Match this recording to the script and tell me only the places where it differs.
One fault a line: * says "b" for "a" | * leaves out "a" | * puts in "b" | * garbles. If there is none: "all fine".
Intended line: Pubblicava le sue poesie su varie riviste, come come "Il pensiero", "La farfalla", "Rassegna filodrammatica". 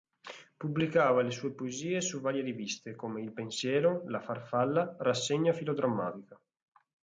* leaves out "come"